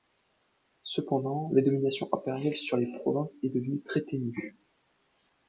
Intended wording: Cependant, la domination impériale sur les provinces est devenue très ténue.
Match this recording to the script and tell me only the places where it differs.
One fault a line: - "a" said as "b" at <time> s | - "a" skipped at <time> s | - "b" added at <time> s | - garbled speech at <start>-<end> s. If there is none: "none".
none